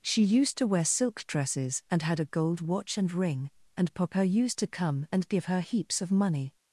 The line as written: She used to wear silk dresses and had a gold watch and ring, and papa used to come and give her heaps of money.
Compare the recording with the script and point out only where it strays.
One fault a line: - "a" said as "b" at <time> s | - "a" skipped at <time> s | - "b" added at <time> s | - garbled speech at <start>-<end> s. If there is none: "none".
none